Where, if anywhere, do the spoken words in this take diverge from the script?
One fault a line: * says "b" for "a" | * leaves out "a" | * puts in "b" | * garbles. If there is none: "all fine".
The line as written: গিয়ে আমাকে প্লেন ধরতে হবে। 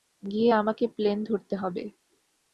all fine